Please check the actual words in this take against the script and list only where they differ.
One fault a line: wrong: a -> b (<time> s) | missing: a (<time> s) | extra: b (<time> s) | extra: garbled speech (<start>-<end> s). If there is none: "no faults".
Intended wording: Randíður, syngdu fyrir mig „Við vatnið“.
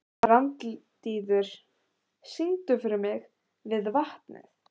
no faults